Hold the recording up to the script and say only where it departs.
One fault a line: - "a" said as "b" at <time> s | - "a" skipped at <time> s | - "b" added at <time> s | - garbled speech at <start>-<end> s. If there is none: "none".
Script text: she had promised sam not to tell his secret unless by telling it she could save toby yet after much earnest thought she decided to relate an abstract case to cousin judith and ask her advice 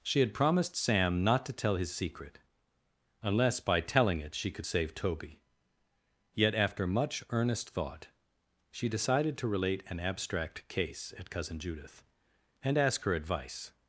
- "to" said as "at" at 11.2 s